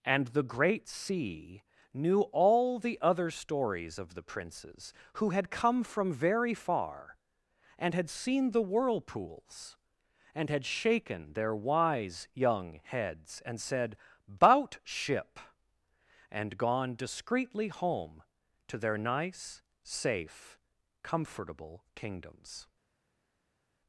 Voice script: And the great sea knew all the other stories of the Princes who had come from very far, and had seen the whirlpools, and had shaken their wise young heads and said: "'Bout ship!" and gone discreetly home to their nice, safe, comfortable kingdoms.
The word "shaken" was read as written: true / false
true